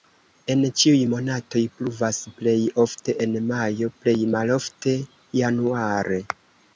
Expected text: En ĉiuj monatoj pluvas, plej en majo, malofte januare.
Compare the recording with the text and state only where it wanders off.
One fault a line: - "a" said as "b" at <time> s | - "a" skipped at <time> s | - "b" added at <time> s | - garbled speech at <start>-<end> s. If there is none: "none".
- "ofte" added at 2.8 s
- "plej" added at 4.0 s